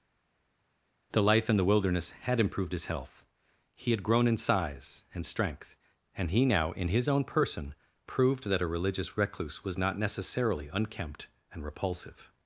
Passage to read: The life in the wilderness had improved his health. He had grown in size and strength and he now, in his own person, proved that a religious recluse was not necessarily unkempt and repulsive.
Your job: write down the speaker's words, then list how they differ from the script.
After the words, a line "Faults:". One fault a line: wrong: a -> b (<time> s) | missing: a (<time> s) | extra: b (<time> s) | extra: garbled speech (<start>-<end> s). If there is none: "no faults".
The life in the wilderness had improved his health. He had grown in size and strength and he now, in his own person, proved that a religious recluse was not necessarily unkempt and repulsive.
Faults:
no faults